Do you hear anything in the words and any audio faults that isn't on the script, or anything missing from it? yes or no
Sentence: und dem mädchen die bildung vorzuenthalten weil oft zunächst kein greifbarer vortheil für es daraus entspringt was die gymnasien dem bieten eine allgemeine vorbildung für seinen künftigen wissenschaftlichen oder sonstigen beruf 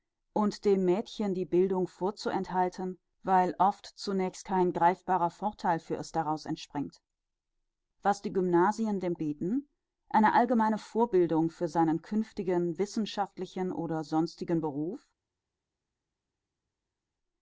no